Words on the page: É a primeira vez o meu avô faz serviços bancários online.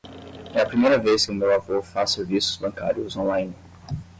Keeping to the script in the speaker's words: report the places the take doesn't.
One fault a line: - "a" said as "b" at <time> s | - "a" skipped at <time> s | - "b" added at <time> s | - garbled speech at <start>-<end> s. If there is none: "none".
none